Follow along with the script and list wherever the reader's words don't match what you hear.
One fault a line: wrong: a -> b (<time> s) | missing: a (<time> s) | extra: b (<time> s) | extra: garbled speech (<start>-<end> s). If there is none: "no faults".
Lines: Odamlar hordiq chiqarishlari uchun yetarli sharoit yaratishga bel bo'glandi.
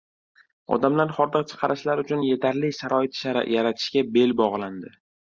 no faults